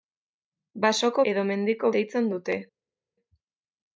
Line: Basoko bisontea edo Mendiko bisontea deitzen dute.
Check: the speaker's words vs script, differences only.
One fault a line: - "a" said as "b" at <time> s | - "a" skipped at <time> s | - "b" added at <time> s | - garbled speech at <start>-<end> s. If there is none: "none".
- "bisontea" skipped at 1.2 s
- "bisontea" skipped at 1.9 s